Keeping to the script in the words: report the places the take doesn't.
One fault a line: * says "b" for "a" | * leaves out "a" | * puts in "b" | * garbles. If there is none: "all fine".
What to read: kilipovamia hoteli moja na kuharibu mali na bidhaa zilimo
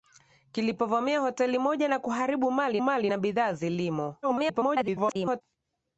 * puts in "mali"
* garbles